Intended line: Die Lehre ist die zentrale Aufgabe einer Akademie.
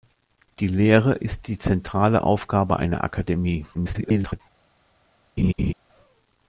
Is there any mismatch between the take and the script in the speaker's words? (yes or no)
yes